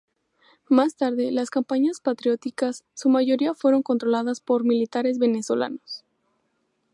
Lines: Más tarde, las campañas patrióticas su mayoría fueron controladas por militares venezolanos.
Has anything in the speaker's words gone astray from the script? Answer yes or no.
no